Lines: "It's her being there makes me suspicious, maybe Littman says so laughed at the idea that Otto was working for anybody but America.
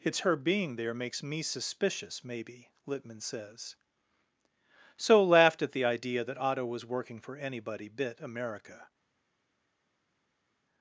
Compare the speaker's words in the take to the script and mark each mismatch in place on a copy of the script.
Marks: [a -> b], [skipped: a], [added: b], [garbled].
"It's her being there makes me suspicious, maybe Littman says so laughed at the idea that Otto was working for anybody [but -> bit] America.